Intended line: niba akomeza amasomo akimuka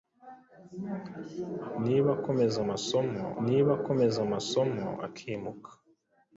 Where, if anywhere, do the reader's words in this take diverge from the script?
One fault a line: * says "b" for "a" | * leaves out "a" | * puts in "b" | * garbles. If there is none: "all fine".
* puts in "niba akomeza amasomo"